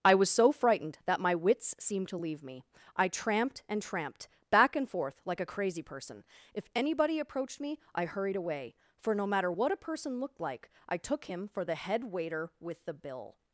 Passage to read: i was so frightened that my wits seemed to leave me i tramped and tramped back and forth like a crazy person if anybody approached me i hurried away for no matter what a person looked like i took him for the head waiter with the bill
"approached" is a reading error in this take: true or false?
false